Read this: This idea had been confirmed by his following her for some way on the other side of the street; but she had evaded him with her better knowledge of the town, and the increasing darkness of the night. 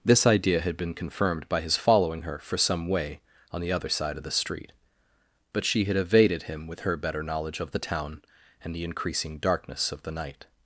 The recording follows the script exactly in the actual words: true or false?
true